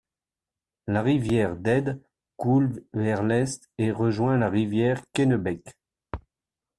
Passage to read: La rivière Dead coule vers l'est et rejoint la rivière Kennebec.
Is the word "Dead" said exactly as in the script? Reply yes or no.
yes